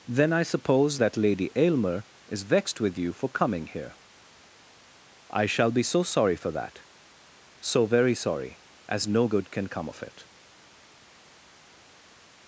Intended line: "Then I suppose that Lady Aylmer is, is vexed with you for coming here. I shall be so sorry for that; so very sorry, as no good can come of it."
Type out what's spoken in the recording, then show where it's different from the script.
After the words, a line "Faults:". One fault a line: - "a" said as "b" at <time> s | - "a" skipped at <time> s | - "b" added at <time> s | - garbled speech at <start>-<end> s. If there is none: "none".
"Then I suppose that Lady Aylmer is, vexed with you for coming here. I shall be so sorry for that; so very sorry, as no good can come of it."
Faults:
- "is" skipped at 2.4 s